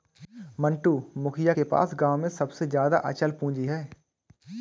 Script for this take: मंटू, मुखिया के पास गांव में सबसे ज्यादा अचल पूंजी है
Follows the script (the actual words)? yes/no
yes